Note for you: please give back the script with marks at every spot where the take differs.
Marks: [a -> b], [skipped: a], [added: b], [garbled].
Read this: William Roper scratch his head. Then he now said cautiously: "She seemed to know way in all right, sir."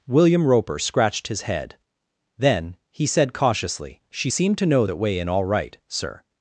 William Roper [scratch -> scratched] his head. Then he [skipped: now] said cautiously: "She seemed to know [added: that] way in all right, sir."